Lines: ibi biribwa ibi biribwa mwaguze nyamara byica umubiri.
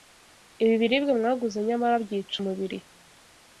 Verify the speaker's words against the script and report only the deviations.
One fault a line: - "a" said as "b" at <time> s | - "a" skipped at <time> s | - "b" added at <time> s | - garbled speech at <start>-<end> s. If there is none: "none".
- "ibi biribwa" skipped at 1.1 s